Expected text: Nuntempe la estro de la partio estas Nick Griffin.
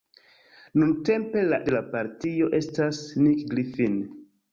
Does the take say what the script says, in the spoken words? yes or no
no